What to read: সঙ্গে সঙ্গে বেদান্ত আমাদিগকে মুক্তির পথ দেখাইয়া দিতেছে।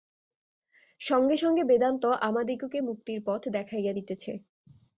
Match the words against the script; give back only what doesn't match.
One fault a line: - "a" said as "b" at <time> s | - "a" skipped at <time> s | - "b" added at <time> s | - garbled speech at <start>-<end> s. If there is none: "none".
none